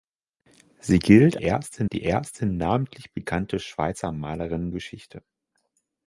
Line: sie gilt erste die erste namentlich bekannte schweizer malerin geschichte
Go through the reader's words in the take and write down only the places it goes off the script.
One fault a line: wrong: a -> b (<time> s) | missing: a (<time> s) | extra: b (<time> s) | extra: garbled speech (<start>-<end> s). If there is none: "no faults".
no faults